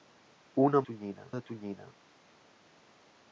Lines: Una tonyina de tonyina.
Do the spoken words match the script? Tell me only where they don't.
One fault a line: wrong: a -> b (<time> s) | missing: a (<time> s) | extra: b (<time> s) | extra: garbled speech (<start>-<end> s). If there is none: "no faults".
no faults